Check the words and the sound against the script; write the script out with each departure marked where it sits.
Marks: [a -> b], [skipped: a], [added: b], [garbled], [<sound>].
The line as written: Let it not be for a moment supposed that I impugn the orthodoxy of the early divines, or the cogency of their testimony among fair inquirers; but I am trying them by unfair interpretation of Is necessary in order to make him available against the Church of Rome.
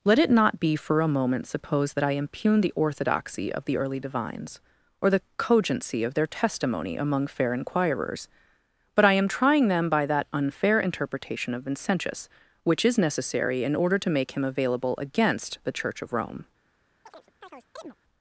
Let it not be for a moment supposed that I impugn the orthodoxy of the early divines, or the cogency of their testimony among fair inquirers; but I am trying them by [added: that] unfair interpretation of [added: Vincentius which] Is necessary in order to make him available against the Church of Rome. [chirp]